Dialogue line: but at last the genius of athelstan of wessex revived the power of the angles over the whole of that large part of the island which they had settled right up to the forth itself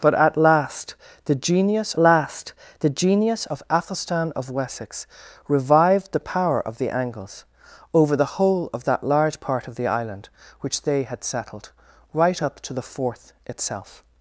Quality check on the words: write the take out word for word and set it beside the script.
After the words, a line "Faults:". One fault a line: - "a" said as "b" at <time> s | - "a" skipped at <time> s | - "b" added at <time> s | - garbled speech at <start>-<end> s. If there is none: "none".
but at last the genius last the genius of athelstan of wessex revived the power of the angles over the whole of that large part of the island which they had settled right up to the forth itself
Faults:
- "last the genius" added at 2.0 s